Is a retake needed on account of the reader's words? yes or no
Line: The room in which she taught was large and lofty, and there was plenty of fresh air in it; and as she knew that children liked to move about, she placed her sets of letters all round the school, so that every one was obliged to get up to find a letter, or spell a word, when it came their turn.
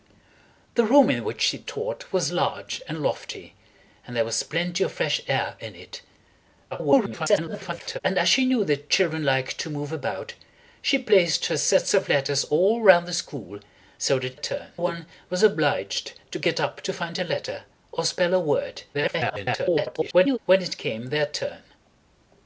yes